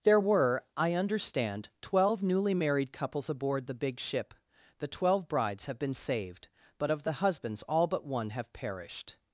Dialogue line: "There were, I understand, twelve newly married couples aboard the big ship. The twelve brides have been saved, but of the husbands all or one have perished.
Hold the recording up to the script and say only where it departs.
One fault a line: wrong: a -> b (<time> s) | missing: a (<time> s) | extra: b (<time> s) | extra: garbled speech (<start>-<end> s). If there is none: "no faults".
wrong: or -> but (7.9 s)